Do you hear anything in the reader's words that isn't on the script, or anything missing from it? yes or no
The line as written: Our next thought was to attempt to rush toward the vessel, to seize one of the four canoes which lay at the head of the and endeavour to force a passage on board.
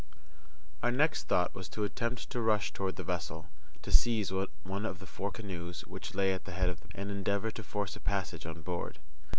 no